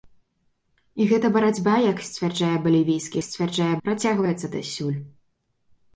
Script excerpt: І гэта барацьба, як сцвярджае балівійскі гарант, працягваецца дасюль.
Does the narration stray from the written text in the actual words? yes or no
yes